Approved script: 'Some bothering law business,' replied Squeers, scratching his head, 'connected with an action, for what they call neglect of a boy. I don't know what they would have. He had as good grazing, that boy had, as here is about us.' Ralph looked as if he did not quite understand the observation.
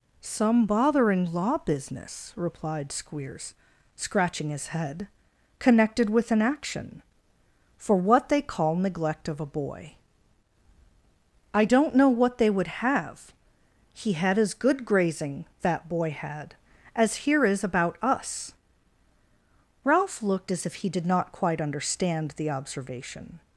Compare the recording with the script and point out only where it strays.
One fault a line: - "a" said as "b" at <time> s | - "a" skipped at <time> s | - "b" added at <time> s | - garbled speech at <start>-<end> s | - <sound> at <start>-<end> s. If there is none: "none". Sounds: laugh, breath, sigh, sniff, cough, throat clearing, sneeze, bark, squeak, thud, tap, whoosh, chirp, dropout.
none